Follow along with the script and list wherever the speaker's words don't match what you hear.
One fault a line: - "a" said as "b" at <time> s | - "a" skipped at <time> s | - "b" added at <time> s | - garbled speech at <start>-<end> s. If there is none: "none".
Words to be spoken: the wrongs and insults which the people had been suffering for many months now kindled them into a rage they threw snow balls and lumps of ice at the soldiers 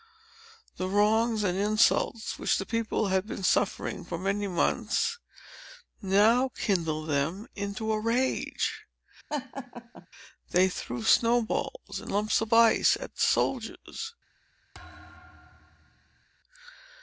none